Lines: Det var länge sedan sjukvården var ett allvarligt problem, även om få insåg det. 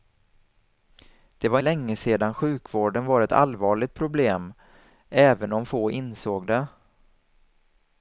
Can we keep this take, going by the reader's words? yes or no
yes